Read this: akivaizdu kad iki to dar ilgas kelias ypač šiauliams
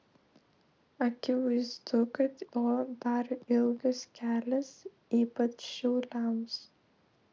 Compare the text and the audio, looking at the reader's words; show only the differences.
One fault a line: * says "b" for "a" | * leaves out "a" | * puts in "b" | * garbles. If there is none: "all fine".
* leaves out "iki"